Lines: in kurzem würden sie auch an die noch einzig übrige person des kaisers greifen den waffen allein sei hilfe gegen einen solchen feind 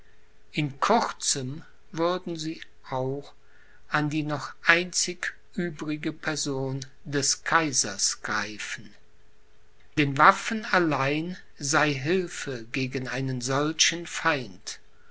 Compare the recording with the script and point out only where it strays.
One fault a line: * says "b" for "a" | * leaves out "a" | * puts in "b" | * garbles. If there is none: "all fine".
all fine